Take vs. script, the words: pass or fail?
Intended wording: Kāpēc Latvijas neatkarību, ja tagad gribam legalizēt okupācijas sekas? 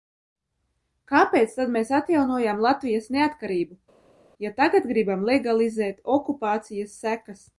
fail